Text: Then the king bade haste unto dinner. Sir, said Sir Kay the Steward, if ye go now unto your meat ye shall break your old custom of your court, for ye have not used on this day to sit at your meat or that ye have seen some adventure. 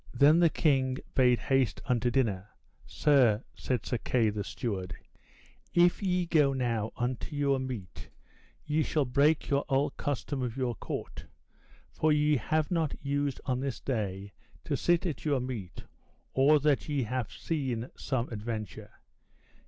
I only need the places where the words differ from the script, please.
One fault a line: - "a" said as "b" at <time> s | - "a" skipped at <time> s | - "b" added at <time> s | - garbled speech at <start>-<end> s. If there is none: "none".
none